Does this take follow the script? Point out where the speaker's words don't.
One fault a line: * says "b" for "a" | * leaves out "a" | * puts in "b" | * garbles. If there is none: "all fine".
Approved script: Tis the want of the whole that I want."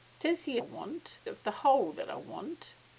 all fine